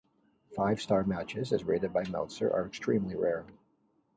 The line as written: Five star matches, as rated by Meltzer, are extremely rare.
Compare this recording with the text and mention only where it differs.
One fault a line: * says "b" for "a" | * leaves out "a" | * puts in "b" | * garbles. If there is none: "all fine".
all fine